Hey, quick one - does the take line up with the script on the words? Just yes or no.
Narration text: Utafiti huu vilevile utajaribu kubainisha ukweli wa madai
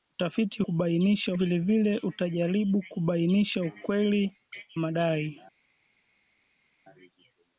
no